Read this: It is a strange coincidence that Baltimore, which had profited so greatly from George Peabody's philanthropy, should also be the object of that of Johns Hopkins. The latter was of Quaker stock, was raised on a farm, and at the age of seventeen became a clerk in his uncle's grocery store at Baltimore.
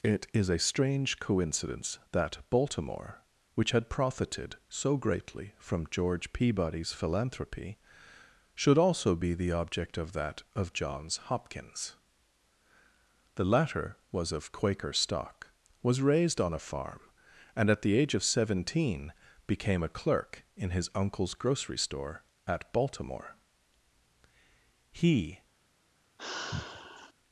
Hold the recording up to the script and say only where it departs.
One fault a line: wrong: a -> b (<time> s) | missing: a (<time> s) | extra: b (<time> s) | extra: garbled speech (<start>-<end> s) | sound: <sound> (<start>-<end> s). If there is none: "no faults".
extra: He (24.9 s)
sound: sigh (26.2-27.1 s)